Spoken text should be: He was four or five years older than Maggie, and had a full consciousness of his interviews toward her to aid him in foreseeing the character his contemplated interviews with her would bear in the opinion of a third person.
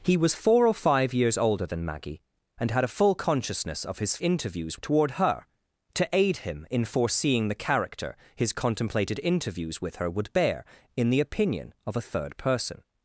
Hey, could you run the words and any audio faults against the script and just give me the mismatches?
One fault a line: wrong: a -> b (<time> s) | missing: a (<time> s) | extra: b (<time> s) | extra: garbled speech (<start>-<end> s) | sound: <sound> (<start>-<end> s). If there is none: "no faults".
no faults